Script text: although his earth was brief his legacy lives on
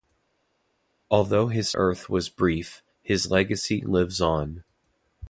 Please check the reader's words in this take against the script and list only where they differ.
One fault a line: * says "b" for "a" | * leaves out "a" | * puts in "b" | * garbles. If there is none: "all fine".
all fine